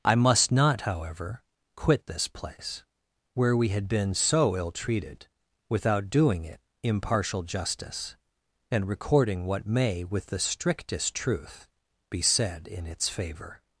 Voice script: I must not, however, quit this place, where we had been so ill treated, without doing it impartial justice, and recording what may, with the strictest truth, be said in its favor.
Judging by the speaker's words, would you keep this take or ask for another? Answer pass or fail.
pass